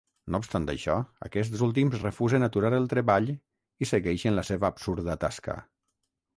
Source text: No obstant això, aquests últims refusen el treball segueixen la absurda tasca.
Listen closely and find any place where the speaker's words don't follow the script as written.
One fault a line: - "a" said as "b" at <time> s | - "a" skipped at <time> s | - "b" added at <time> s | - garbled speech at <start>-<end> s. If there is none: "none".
- "aturar" added at 2.5 s
- "i" added at 3.3 s
- "seva" added at 4.5 s